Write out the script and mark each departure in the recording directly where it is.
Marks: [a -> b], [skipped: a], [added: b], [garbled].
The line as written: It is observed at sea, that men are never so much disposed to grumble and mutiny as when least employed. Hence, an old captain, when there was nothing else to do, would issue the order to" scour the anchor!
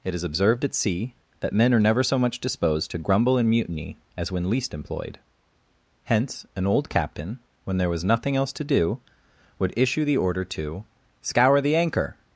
It is observed at sea, that men are never so much disposed to grumble and mutiny as when least employed. Hence, an old captain, when there was nothing else to do, would issue the order to" scour the anchor!